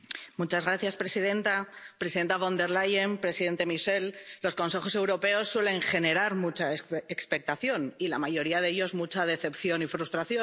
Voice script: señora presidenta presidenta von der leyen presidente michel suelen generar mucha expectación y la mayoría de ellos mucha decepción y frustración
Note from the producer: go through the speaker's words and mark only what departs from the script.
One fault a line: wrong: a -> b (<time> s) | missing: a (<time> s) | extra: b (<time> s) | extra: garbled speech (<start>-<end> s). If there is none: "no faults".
extra: los consejos europeos (4.4 s)